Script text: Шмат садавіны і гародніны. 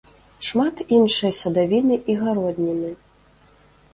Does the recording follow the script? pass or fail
fail